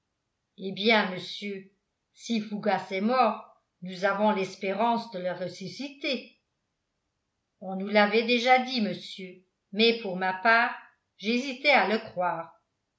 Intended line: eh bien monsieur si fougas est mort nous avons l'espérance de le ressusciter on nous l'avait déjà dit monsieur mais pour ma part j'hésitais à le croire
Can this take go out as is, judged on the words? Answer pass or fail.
pass